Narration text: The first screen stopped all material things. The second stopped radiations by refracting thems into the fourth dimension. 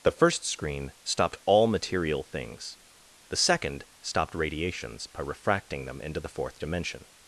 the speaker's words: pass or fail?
fail